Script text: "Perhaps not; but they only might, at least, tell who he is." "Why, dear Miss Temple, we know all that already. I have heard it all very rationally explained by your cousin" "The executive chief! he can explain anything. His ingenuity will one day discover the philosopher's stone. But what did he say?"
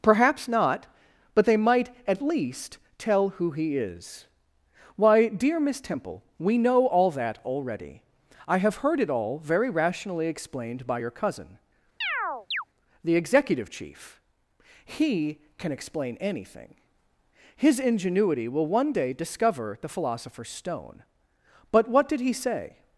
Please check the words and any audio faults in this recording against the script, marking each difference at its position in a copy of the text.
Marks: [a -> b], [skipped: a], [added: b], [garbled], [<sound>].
"Perhaps not; but they [skipped: only] might, at least, tell who he is." "Why, dear Miss Temple, we know all that already. I have heard it all very rationally explained by your cousin" [chirp] "The executive chief! he can explain anything. His ingenuity will one day discover the philosopher's stone. But what did he say?"